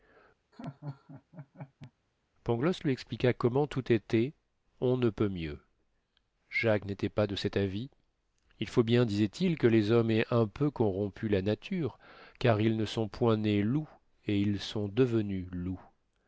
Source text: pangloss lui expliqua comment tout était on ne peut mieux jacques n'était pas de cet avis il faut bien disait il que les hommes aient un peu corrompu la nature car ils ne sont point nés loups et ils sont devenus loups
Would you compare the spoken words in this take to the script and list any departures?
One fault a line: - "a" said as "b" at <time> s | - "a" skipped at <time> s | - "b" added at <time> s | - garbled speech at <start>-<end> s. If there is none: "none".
none